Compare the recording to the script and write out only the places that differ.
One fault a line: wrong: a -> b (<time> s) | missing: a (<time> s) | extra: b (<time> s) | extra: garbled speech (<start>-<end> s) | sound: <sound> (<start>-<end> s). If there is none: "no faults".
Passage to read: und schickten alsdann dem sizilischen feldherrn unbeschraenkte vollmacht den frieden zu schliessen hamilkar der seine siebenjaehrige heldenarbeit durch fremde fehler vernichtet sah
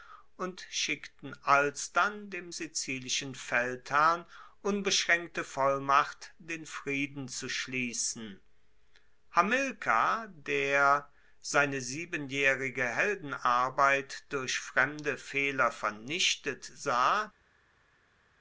no faults